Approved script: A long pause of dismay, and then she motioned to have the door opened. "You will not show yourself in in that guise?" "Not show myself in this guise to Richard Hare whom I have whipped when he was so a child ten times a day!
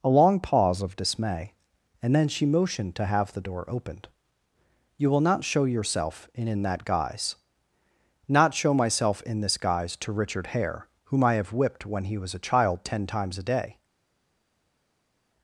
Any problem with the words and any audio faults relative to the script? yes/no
yes